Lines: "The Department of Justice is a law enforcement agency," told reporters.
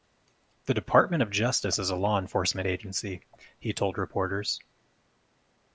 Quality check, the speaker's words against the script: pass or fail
fail